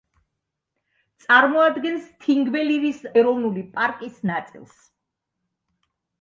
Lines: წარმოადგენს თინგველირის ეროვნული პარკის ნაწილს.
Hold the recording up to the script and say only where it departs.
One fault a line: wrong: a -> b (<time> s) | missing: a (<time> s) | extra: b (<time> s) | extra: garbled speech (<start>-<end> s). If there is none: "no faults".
no faults